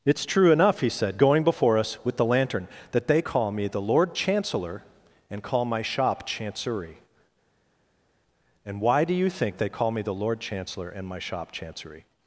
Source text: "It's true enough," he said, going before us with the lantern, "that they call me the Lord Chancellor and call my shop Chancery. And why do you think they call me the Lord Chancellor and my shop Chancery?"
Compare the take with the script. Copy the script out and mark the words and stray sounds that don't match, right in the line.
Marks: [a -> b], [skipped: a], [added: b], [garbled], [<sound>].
"It's true enough," he said, going before us with the lantern, "that they call me the Lord Chancellor and call my shop Chancery. And why do you think they call me the Lord Chancellor and my shop Chancery?"